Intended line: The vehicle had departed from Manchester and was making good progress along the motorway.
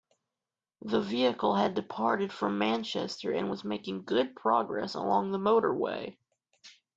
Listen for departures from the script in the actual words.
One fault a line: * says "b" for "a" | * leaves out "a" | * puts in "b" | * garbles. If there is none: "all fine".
all fine